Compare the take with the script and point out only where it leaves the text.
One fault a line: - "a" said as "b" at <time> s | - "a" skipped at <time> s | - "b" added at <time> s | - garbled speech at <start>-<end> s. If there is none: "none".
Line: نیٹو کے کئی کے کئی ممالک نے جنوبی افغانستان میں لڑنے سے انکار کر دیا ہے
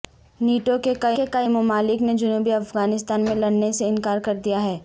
none